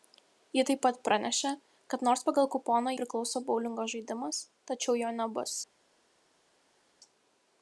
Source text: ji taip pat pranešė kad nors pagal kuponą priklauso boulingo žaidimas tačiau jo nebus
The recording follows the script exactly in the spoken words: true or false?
true